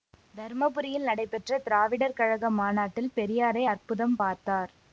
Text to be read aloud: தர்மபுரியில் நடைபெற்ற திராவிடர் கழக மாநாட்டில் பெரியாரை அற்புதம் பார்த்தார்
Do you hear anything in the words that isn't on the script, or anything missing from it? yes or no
no